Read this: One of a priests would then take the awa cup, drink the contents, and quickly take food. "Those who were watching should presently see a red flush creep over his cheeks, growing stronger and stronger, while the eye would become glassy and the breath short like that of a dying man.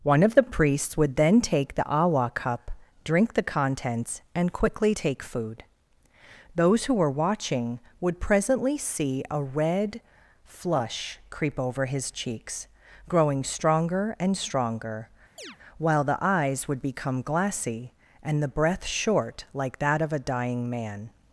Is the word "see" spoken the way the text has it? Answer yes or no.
yes